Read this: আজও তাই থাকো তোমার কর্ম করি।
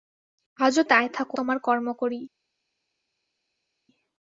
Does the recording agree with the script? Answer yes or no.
yes